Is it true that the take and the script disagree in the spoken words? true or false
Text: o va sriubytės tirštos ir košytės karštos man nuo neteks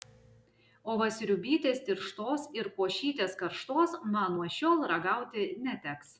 true